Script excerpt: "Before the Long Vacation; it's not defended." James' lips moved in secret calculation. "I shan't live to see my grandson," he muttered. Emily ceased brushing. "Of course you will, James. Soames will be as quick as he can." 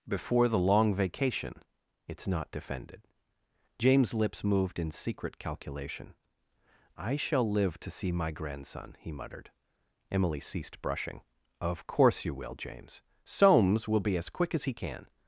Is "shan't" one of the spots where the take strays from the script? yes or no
yes